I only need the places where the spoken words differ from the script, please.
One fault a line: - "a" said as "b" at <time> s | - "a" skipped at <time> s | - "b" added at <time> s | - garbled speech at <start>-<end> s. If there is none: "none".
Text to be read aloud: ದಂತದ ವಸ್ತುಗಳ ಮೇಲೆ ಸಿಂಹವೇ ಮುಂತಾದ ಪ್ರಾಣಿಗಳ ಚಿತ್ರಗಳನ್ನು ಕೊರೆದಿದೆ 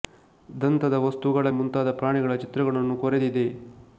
- "ಮೇಲೆ ಸಿಂಹವೇ" skipped at 1.5 s